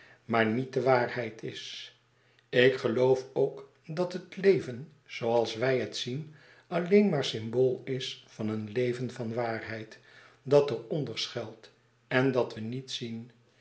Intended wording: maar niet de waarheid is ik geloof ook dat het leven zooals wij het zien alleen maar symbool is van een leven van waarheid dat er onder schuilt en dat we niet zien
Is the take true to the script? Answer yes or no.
yes